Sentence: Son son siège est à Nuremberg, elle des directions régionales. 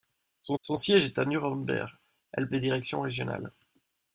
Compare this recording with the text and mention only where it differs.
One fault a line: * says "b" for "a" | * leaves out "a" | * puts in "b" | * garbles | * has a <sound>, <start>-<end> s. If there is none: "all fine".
all fine